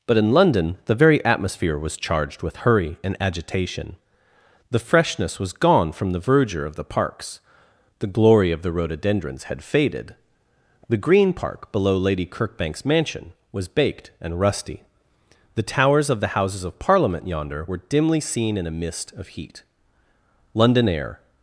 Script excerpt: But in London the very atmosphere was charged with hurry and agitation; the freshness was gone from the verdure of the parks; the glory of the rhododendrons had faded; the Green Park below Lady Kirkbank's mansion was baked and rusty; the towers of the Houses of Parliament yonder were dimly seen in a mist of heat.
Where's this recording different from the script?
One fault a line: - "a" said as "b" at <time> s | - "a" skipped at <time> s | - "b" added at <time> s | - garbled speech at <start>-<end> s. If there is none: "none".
- "London air" added at 20.5 s